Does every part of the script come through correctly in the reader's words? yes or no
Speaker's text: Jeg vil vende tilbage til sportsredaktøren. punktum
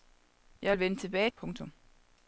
no